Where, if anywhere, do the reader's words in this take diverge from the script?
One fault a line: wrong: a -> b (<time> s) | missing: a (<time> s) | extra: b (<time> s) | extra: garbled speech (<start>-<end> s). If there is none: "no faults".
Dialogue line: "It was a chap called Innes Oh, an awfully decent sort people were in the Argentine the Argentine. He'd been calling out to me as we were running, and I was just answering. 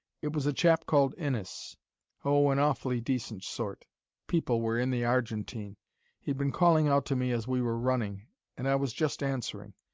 missing: the Argentine (5.8 s)